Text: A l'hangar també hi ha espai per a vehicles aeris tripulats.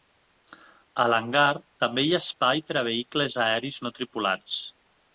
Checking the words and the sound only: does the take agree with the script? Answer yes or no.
no